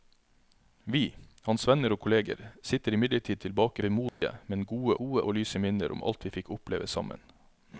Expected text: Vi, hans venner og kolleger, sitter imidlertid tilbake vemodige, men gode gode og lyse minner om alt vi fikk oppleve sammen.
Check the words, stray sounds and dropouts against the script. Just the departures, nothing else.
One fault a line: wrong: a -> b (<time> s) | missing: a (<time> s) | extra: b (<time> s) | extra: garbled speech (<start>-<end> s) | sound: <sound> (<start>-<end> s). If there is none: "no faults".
sound: dropout (4.1-4.2 s)